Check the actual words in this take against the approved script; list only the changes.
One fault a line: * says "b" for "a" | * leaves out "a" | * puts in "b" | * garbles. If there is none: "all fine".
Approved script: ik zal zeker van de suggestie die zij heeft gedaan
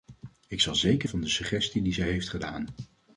all fine